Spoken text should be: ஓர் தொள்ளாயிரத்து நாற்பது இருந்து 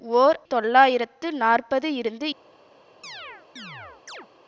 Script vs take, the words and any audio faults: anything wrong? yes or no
yes